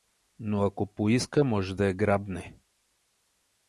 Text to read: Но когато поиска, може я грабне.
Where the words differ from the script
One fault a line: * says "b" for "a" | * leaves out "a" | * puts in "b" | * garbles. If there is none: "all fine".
* says "ако" for "когато"
* puts in "да"